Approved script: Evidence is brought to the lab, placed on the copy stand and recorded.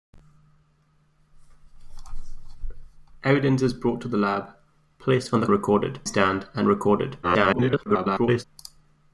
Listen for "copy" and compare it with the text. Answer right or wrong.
wrong